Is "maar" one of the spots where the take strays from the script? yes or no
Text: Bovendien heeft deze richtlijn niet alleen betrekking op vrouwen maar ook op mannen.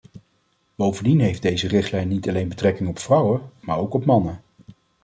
no